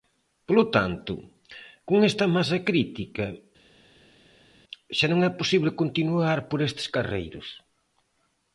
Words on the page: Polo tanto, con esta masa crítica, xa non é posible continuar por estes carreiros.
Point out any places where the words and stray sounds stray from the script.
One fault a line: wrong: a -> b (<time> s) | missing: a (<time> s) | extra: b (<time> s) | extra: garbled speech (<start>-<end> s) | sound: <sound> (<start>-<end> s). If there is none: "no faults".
no faults